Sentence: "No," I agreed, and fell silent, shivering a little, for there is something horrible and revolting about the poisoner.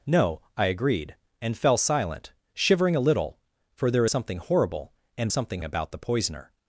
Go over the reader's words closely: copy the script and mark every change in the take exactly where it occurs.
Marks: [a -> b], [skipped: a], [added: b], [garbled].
"No," I agreed, and fell silent, shivering a little, for there [skipped: is] something horrible and [revolting -> something] about the poisoner.